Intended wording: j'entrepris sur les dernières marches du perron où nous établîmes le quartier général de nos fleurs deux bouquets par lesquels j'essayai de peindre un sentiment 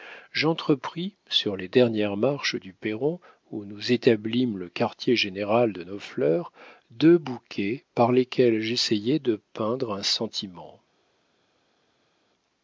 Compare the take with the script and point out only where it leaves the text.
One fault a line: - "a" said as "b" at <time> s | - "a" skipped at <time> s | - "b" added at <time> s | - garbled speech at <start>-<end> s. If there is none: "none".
none